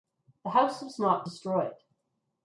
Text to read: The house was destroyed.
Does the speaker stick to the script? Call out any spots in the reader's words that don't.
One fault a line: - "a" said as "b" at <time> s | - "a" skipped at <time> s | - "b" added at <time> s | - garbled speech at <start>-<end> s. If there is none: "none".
- "not" added at 1.0 s